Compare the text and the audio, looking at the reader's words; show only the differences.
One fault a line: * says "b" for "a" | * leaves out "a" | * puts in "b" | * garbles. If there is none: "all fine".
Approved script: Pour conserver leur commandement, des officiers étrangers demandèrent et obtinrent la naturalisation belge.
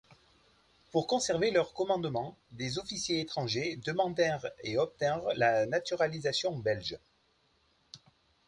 all fine